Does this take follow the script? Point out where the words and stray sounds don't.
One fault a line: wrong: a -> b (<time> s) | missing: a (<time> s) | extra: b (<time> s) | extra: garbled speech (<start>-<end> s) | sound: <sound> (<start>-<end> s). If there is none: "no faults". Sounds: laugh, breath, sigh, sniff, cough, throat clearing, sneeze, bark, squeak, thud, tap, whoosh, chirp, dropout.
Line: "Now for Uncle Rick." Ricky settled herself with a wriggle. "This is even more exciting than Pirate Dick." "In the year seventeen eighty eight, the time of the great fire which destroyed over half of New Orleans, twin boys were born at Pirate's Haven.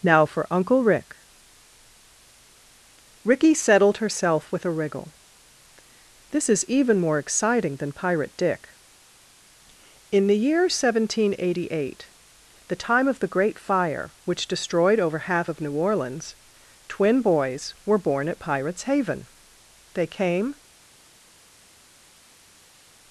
extra: They came (19.9 s)